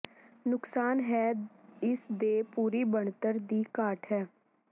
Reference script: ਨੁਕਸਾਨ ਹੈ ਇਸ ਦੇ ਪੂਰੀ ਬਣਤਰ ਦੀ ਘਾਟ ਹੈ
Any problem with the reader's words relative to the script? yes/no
no